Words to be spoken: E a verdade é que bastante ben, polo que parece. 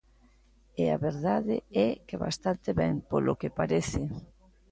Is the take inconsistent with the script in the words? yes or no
no